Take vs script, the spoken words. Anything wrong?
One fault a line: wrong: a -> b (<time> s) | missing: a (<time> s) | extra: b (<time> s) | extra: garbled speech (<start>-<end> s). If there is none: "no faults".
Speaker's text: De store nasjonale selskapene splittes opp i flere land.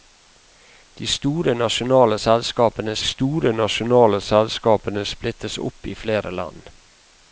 extra: store nasjonale selskapene (3.0 s)